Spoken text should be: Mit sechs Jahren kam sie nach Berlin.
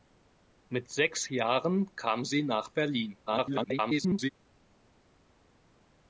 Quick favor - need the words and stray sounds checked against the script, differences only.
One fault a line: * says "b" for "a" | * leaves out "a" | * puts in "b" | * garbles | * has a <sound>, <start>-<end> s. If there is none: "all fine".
* garbles